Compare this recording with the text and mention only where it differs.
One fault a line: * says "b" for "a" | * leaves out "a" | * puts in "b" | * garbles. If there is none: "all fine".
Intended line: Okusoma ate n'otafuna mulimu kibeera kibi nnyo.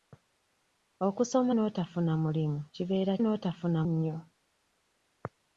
* leaves out "ate"
* says "n'otafuna" for "kibi"